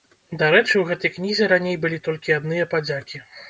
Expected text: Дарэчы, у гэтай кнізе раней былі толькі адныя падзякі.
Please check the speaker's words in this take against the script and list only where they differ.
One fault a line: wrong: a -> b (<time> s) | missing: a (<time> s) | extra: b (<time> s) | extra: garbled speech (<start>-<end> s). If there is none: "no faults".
no faults